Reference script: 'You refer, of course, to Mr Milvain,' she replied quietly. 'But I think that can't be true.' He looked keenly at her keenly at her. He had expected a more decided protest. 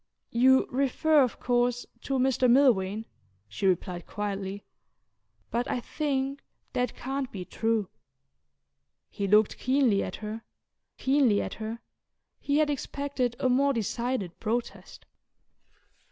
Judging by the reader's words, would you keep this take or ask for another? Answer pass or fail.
pass